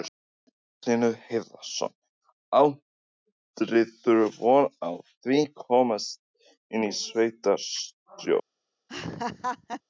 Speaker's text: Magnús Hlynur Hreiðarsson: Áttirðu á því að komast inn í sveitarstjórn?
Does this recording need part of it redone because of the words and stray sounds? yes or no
yes